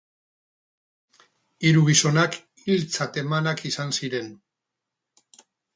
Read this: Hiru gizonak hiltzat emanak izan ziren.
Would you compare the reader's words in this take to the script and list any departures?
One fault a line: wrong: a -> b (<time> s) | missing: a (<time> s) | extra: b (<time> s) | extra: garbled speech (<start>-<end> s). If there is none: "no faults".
no faults